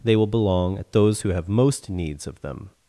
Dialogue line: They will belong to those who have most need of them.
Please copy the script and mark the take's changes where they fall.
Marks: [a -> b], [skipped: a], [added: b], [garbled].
They will belong [to -> at] those who have most [need -> needs] of them.